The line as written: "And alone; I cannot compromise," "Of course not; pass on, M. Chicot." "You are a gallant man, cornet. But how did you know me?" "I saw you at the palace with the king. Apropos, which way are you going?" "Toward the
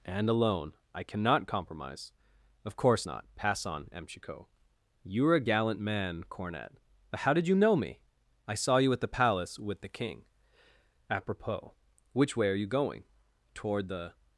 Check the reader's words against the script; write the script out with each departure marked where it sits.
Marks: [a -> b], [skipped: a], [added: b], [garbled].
"And alone; I cannot compromise," "Of course not; pass on, M. Chicot." "You are a gallant man, cornet. But how did you know me?" "I saw you at the palace with the king. Apropos, which way are you going?" "Toward the